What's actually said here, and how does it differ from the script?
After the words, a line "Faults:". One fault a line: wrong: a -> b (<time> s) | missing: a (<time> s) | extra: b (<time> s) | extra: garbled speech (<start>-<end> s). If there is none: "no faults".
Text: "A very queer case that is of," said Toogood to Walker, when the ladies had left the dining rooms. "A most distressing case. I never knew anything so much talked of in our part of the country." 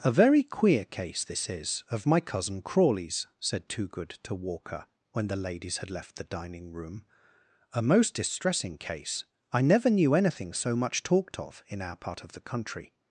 "A very queer case this is of my cousin Crawley's," said Toogood to Walker, when the ladies had left the dining room. "A most distressing case. I never knew anything so much talked of in our part of the country."
Faults:
wrong: that -> this (1.2 s)
extra: my cousin Crawley's (2.1 s)
wrong: rooms -> room (6.7 s)